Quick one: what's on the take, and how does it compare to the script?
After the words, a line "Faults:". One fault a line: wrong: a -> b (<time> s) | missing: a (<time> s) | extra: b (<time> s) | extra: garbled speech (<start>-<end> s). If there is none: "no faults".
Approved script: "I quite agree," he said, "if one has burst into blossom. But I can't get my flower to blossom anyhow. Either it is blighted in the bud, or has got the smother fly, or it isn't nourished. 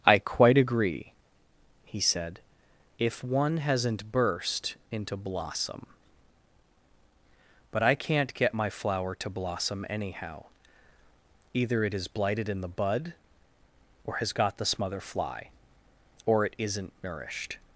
"I quite agree," he said, "if one hasn't burst into blossom. But I can't get my flower to blossom anyhow. Either it is blighted in the bud, or has got the smother fly, or it isn't nourished.
Faults:
wrong: has -> hasn't (3.6 s)